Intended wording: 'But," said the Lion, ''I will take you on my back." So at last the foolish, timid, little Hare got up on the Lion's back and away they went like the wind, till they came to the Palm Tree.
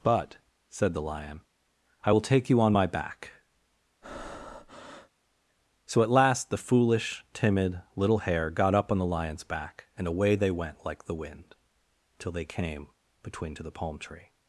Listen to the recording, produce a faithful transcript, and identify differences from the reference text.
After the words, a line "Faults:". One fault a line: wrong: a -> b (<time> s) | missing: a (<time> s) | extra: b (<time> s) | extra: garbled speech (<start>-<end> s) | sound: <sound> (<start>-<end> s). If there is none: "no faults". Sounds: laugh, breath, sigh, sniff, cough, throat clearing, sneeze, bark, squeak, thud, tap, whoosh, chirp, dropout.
'But," said the Lion, ''I will take you on my back." So at last the foolish, timid, little Hare got up on the Lion's back and away they went like the wind, till they came between to the Palm Tree.
Faults:
sound: breath (4.0-5.1 s)
extra: between (13.2 s)